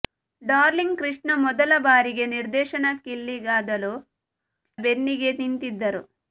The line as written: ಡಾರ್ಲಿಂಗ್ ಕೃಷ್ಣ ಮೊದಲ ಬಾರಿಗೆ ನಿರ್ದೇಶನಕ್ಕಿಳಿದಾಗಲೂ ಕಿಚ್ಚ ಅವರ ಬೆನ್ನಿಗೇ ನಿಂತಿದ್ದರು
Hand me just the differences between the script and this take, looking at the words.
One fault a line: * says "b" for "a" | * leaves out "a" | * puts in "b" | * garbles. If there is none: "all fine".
* leaves out "ಕಿಚ್ಚ ಅವರ"